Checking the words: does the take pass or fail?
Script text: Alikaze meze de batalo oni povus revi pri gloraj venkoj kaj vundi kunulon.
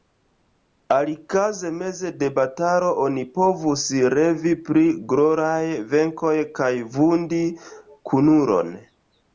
pass